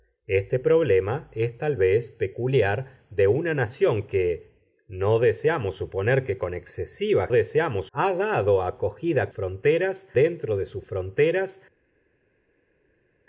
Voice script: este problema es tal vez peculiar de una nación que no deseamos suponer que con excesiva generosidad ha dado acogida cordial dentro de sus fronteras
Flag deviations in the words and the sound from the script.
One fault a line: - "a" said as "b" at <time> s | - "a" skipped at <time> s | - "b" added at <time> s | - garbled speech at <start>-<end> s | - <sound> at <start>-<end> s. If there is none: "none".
- "generosidad" said as "deseamos" at 7.3 s
- "cordial" said as "fronteras" at 9.3 s